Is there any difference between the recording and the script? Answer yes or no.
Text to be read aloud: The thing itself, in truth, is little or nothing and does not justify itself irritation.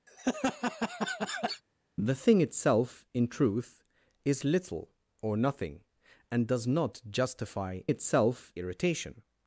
no